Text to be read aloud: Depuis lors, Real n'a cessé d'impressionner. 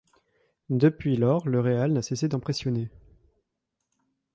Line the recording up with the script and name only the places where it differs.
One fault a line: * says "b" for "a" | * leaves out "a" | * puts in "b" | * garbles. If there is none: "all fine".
* puts in "le"